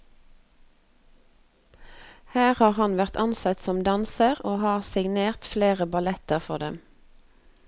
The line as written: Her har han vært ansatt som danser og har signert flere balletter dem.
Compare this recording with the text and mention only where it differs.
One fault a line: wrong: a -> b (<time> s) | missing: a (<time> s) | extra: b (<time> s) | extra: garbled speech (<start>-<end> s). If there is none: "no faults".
extra: for (6.4 s)